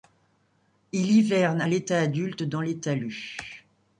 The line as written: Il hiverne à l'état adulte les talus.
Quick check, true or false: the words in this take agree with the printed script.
false